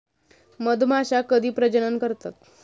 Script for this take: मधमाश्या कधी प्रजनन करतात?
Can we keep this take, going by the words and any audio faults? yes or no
yes